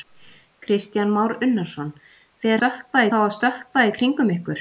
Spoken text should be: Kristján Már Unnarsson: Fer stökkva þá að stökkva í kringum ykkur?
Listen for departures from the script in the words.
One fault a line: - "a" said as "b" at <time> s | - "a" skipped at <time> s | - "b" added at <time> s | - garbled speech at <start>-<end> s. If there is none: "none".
none